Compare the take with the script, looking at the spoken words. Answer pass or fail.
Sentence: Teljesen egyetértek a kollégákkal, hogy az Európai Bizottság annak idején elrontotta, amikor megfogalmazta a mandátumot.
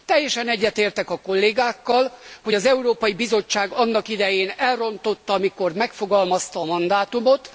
pass